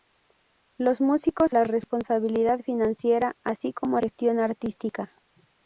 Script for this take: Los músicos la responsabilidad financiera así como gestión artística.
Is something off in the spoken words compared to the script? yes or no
no